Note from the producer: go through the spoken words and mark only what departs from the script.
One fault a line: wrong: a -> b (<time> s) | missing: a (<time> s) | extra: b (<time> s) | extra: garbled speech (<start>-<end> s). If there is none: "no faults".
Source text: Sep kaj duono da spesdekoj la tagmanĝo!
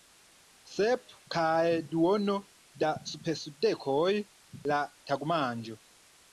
no faults